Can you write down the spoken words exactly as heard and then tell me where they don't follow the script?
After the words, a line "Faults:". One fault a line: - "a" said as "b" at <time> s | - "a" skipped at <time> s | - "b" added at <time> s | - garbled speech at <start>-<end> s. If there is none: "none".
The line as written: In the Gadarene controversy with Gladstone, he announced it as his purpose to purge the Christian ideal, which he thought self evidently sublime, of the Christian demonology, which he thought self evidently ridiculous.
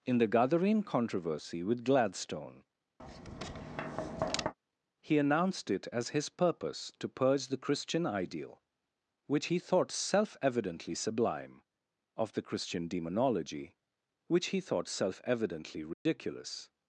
In the Gadarene controversy with Gladstone, he announced it as his purpose to purge the Christian ideal, which he thought self evidently sublime, of the Christian demonology, which he thought self evidently ridiculous.
Faults:
none